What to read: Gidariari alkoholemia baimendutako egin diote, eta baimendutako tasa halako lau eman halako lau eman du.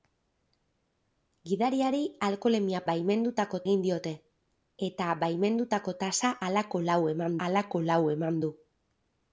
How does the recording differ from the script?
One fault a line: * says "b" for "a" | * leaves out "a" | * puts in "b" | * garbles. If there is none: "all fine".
all fine